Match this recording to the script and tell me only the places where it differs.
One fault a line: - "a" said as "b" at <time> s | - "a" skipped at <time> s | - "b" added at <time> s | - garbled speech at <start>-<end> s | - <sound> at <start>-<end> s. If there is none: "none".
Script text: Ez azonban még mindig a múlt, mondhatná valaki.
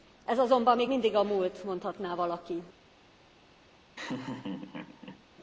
- laugh at 4.0-5.2 s